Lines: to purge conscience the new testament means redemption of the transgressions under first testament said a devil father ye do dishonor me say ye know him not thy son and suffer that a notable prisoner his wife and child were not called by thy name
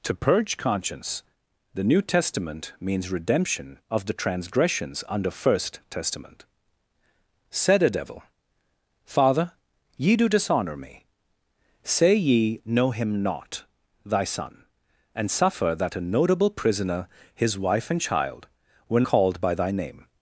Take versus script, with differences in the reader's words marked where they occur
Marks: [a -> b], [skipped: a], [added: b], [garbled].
to purge conscience the new testament means redemption of the transgressions under first testament said a devil father ye do dishonor me say ye know him not thy son and suffer that a notable prisoner his wife and child were [skipped: not] called by thy name